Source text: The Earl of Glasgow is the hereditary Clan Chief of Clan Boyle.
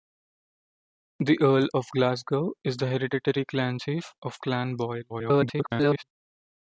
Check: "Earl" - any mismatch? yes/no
no